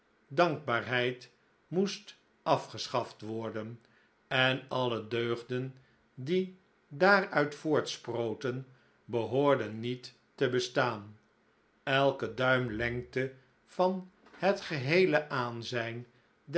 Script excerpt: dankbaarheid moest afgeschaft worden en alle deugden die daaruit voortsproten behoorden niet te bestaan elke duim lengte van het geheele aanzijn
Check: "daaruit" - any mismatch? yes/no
no